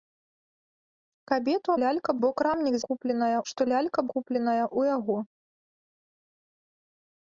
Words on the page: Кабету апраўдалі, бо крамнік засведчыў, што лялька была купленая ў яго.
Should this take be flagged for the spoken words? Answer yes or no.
yes